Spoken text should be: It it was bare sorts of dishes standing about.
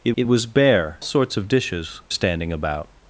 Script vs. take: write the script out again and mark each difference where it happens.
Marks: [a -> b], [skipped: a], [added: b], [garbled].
It it was bare sorts of dishes standing about.